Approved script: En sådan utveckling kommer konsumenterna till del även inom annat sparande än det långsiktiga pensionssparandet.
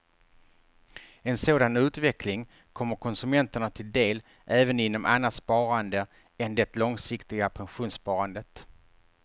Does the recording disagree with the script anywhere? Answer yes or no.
no